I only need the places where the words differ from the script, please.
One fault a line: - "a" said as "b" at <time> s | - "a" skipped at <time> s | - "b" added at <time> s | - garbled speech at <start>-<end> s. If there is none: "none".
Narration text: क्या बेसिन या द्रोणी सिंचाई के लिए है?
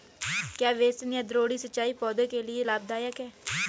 - "पौधों" added at 2.0 s
- "लाभदायक" added at 2.6 s